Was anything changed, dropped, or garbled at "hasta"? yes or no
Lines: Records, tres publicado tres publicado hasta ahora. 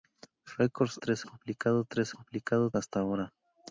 no